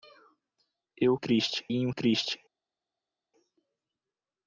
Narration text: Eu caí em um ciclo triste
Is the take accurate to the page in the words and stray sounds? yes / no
no